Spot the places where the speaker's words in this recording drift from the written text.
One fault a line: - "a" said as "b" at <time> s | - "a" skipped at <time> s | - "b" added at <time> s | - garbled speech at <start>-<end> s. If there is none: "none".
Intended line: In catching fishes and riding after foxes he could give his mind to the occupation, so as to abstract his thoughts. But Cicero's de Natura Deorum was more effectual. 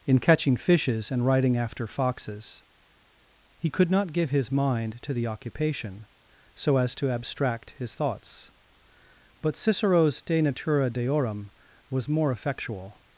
- "not" added at 3.9 s